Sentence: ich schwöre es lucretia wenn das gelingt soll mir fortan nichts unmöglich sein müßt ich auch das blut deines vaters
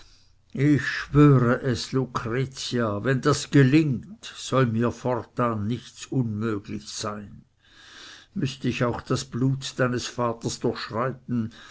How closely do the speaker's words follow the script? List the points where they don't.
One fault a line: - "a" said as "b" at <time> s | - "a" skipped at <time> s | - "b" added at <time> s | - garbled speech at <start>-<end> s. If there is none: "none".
none